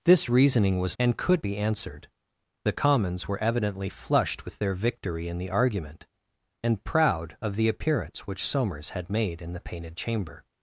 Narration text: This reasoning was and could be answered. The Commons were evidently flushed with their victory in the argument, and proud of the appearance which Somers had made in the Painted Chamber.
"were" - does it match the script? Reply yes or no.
yes